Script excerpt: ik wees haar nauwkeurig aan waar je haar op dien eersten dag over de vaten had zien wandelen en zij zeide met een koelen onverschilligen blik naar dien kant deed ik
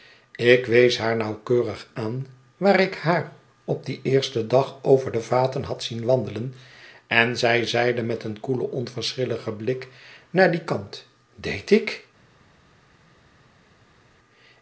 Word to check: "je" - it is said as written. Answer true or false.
false